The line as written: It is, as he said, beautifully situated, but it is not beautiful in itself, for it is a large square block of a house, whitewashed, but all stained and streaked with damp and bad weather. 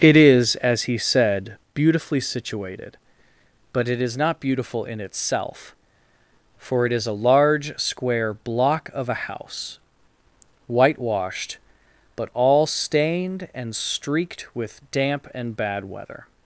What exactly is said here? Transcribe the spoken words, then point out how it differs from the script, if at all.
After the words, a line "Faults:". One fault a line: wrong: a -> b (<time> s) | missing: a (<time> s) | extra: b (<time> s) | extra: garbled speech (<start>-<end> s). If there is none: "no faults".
It is, as he said, beautifully situated, but it is not beautiful in itself, for it is a large square block of a house, whitewashed, but all stained and streaked with damp and bad weather.
Faults:
no faults